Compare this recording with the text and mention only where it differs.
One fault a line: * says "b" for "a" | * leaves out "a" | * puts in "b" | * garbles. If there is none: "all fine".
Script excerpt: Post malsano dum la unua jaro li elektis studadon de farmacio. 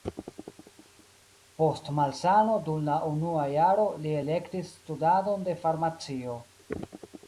all fine